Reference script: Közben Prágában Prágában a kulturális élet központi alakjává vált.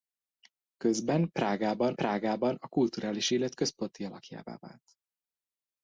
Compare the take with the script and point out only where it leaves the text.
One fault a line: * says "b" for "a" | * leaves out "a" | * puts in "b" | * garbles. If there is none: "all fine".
all fine